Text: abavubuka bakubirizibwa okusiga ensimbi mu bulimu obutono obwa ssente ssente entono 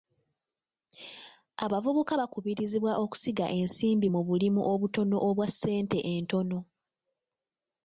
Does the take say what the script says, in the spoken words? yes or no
no